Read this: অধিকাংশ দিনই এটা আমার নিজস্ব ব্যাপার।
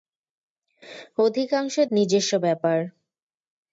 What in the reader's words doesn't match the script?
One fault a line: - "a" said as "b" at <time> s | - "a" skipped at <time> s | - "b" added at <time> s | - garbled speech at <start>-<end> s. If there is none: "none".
- "দিনই এটা আমার" skipped at 1.8 s